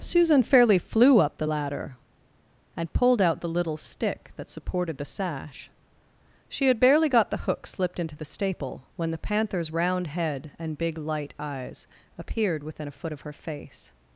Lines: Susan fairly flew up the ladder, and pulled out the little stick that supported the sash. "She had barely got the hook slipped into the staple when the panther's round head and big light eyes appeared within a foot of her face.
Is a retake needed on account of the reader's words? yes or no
no